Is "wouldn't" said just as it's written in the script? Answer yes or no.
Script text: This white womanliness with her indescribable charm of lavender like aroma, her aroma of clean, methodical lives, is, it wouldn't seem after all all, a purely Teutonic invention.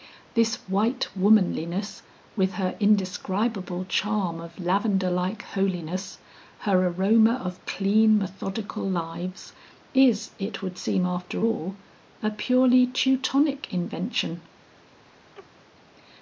no